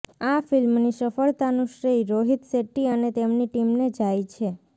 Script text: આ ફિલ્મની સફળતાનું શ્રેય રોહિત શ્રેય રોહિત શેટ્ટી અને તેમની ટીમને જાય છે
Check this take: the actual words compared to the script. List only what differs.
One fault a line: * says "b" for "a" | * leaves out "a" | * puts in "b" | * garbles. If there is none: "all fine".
* leaves out "શ્રેય રોહિત"